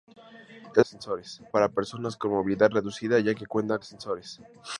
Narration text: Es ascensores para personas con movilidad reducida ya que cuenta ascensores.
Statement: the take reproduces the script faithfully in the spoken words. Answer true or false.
true